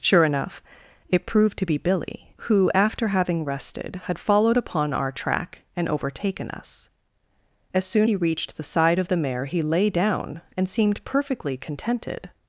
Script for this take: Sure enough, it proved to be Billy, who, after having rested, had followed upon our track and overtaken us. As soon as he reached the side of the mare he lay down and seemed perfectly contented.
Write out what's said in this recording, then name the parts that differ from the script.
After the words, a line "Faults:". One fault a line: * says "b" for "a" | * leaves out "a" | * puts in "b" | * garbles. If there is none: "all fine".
Sure enough, it proved to be Billy, who, after having rested, had followed upon our track and overtaken us. As soon he reached the side of the mare he lay down and seemed perfectly contented.
Faults:
* leaves out "as"